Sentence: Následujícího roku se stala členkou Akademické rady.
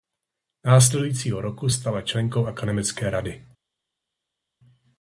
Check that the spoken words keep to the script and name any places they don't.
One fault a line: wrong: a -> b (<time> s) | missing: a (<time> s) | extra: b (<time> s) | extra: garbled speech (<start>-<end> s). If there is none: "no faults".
missing: se (1.7 s)